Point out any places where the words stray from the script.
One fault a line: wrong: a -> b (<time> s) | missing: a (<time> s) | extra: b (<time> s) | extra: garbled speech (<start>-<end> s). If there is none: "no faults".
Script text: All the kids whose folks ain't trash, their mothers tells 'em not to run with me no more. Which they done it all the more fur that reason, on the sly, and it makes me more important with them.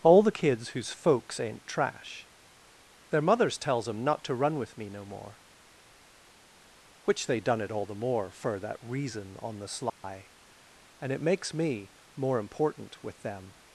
no faults